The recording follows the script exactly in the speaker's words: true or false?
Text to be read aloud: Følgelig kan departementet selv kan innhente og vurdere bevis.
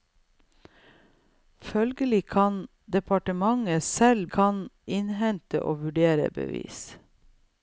true